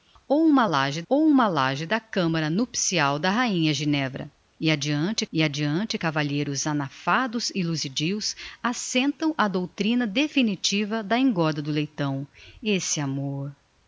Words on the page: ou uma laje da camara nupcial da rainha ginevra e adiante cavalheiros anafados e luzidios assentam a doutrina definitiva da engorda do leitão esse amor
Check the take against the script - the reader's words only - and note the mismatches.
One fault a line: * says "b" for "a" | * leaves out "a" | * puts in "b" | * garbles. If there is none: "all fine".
* puts in "ou uma laje"
* puts in "e adiante"